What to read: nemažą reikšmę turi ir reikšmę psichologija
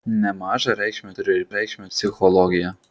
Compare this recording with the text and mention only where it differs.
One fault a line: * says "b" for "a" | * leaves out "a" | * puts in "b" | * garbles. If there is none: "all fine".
all fine